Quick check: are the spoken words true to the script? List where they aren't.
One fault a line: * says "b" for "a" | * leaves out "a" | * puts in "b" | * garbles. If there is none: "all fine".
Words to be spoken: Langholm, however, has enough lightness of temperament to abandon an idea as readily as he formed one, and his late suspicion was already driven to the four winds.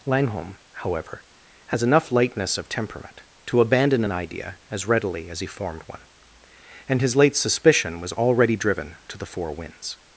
all fine